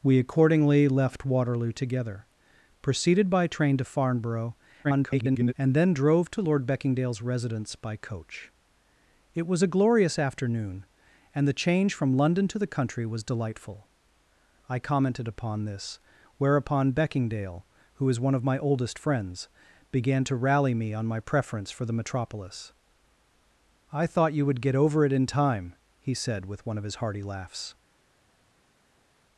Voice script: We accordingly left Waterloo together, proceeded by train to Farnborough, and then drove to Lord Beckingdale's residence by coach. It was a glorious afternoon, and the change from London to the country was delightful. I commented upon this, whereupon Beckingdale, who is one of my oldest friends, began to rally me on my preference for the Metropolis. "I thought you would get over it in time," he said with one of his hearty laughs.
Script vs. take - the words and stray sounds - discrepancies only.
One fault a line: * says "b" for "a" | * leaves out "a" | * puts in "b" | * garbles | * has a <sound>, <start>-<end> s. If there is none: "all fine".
* garbles